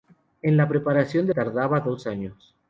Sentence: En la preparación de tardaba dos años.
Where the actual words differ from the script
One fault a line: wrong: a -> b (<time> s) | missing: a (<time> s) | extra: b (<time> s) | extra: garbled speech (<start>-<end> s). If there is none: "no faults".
no faults